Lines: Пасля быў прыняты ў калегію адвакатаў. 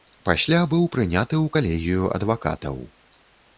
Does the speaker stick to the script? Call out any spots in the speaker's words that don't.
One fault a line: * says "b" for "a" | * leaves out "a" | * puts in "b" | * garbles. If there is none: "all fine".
all fine